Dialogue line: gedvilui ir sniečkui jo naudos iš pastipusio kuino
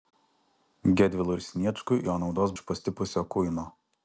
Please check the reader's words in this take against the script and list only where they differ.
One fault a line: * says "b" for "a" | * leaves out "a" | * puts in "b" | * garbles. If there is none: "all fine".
all fine